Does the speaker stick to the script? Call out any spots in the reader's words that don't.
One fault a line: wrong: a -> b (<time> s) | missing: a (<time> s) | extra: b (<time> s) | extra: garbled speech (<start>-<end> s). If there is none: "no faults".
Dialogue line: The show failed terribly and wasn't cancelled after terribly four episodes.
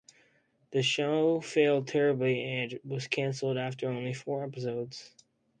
wrong: wasn't -> was (2.8 s)
wrong: terribly -> only (3.9 s)